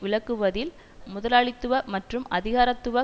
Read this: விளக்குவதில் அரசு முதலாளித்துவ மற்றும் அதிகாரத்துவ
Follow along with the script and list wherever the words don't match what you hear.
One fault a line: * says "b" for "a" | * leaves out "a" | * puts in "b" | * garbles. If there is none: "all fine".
* leaves out "அரசு"